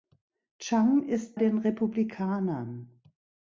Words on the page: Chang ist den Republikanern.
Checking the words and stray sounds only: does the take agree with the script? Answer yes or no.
yes